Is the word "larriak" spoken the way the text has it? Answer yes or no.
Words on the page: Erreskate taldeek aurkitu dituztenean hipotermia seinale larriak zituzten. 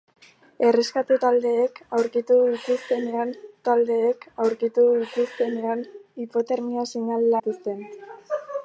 no